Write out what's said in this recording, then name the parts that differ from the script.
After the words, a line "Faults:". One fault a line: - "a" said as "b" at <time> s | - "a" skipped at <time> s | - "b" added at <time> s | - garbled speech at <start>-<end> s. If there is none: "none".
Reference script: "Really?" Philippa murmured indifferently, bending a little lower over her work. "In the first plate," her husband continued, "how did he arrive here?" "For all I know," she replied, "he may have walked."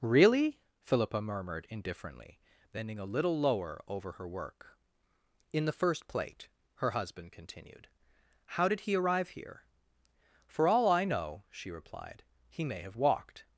"Really?" Philippa murmured indifferently, bending a little lower over her work. "In the first plate," her husband continued, "how did he arrive here?" "For all I know," she replied, "he may have walked."
Faults:
none